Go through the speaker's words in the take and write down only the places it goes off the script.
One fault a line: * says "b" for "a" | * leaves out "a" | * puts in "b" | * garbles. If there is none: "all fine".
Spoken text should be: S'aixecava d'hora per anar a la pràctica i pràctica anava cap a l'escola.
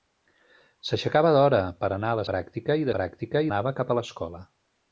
all fine